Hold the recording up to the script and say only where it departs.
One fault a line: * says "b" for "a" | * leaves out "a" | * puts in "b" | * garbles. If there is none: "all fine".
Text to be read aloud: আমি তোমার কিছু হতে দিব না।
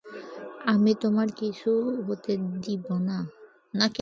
all fine